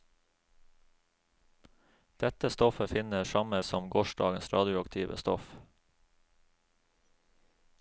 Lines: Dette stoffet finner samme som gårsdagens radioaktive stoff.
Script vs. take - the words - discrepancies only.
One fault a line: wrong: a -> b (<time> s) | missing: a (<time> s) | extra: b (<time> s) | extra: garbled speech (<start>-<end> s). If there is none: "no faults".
no faults